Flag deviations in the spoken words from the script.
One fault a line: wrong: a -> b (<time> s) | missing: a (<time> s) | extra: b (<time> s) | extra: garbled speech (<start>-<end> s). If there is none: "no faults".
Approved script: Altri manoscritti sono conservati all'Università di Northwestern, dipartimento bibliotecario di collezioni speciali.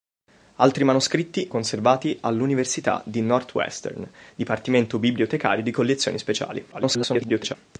missing: sono (1.5 s)
extra: garbled speech (6.7-7.6 s)